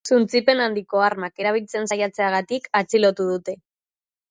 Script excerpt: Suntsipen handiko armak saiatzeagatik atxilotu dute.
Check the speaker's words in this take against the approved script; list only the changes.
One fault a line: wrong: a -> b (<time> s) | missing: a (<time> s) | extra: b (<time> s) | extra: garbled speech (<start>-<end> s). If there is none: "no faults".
extra: erabiltzen (1.4 s)